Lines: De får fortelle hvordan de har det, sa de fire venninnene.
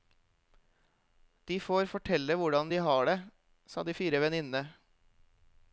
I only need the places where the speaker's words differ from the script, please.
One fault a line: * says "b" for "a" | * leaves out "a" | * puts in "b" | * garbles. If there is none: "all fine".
all fine